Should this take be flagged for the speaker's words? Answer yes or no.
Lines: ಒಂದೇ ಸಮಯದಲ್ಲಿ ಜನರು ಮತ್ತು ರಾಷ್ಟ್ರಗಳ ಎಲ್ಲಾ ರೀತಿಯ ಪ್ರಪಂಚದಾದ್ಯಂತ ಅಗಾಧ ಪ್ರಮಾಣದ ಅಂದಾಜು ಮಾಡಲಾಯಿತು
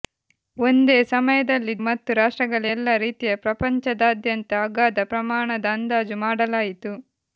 yes